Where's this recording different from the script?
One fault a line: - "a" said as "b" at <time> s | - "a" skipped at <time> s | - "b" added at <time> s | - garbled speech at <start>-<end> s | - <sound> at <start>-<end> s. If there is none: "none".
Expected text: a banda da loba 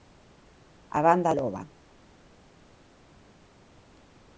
- "da" skipped at 1.3 s